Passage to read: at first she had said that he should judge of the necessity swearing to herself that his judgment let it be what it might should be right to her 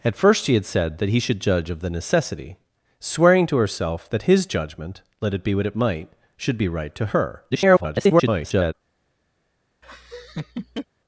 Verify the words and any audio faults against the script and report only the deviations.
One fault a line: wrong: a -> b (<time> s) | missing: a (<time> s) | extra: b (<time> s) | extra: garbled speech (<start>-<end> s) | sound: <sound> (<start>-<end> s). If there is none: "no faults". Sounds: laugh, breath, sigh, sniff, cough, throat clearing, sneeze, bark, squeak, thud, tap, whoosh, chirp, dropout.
extra: garbled speech (7.5-8.7 s)
sound: laugh (9.8-10.9 s)